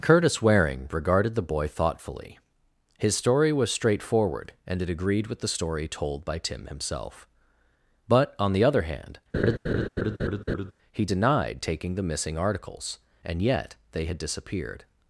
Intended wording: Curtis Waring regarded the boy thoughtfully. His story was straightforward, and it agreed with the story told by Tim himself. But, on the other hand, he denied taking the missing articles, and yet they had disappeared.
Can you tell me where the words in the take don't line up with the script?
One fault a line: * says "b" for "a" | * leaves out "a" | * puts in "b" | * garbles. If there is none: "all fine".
all fine